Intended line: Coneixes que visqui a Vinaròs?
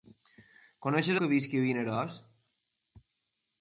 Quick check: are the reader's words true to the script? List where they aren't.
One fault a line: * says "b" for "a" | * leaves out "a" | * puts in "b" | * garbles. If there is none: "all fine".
all fine